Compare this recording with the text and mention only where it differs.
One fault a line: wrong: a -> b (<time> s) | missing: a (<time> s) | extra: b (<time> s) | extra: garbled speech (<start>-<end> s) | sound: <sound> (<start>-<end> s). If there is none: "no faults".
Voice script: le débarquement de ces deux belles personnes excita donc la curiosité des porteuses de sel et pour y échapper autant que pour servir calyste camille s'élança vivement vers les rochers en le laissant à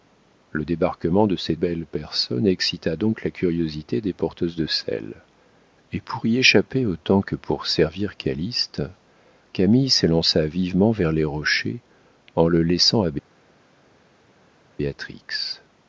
missing: deux (1.6 s)